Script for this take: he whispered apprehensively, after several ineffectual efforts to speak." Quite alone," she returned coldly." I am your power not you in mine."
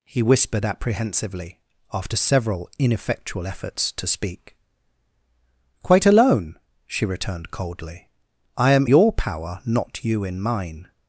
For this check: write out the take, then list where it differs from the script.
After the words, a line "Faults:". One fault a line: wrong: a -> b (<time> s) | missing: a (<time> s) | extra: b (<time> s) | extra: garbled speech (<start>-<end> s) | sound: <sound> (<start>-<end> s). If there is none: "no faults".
he whispered apprehensively, after several ineffectual efforts to speak." Quite alone," she returned coldly." I am your power not you in mine."
Faults:
no faults